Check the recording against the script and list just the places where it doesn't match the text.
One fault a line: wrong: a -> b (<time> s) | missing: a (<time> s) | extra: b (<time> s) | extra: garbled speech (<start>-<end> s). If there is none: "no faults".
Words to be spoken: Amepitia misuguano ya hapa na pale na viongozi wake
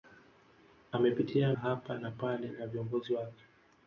missing: misuguano ya (1.5 s)